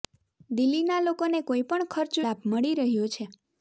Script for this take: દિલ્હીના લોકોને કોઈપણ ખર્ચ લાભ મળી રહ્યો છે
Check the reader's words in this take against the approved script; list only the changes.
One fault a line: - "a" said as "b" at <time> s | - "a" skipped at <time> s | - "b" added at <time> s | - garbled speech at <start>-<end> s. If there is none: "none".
none